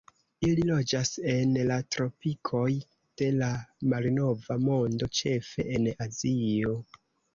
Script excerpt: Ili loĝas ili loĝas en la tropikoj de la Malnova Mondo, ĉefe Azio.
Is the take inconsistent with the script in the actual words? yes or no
yes